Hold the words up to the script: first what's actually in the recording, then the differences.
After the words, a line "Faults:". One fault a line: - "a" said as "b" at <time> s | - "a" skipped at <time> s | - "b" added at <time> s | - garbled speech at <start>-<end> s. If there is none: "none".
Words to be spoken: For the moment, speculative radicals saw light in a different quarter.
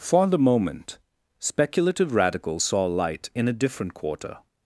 For the moment, speculative radicals saw light in a different quarter.
Faults:
none